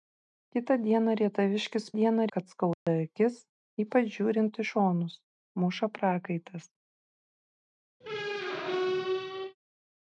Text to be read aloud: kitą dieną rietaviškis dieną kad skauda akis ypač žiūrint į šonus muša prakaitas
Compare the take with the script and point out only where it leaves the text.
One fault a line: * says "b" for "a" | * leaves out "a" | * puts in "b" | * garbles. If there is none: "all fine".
all fine